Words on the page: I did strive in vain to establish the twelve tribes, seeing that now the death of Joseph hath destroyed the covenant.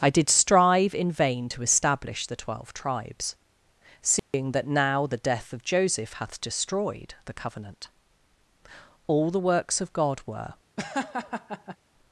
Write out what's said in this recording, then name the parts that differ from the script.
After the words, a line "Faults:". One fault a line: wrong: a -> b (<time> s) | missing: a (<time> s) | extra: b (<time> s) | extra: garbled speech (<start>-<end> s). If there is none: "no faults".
I did strive in vain to establish the twelve tribes, seeing that now the death of Joseph hath destroyed the covenant. All the works of God were
Faults:
extra: All the works of God were (9.1 s)